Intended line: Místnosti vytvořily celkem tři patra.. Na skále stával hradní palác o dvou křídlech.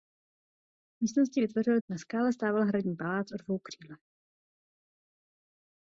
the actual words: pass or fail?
fail